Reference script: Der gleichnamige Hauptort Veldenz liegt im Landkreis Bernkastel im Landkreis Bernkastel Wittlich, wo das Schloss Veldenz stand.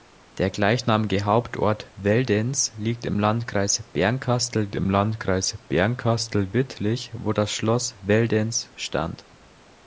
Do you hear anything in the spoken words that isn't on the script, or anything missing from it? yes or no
no